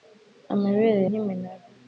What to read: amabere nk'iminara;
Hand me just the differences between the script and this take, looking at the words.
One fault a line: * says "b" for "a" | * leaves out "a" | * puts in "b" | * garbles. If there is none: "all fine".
all fine